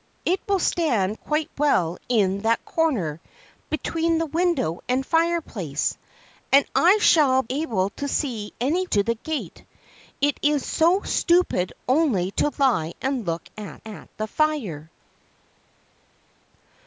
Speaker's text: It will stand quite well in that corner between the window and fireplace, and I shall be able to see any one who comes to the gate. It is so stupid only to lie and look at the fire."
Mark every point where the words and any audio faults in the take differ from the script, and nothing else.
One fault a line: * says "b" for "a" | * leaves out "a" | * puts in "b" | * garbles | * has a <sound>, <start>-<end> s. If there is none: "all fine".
* leaves out "be"
* leaves out "one who comes"
* puts in "at"